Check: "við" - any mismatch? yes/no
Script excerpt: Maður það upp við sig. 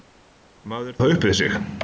no